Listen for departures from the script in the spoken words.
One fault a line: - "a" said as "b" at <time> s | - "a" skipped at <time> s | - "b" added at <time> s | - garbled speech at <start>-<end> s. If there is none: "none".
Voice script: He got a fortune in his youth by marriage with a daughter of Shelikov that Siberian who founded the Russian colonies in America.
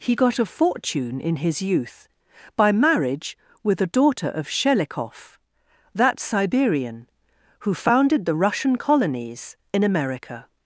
none